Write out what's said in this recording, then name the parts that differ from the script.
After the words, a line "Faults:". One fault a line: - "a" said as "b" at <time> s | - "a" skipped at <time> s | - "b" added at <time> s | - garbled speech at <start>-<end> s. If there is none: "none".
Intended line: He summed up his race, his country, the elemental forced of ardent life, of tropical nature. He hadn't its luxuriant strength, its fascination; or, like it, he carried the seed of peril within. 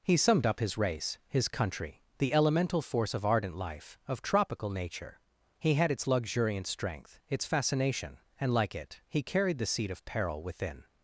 He summed up his race, his country, the elemental force of ardent life, of tropical nature. He had its luxuriant strength, its fascination; and, like it, he carried the seed of peril within.
Faults:
- "forced" said as "force" at 2.8 s
- "hadn't" said as "had" at 5.7 s
- "or" said as "and" at 8.4 s